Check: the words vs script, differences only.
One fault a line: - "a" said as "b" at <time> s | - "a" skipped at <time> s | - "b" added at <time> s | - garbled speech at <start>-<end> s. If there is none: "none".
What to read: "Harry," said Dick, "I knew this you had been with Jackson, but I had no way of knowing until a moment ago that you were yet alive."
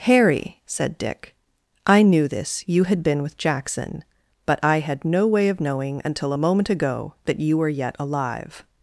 none